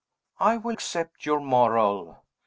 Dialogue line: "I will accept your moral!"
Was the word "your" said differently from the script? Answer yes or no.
no